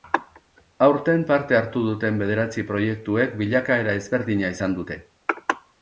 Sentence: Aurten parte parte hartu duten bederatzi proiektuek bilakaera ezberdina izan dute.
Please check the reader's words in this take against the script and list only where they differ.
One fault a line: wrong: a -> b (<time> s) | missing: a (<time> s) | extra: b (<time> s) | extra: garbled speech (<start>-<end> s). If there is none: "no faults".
missing: parte (1.6 s)